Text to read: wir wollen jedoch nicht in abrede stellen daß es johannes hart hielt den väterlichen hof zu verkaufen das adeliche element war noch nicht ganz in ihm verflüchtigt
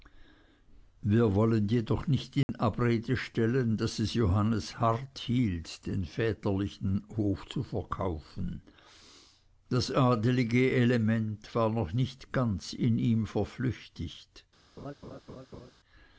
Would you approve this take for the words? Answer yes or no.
yes